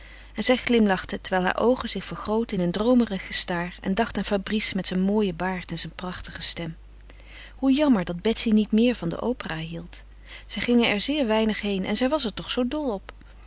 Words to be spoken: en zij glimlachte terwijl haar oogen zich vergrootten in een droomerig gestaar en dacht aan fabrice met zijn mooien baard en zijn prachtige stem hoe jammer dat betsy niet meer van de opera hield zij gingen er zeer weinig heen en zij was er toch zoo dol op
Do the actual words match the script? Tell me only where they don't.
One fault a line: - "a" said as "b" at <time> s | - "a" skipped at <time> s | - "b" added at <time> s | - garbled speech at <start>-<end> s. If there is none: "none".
none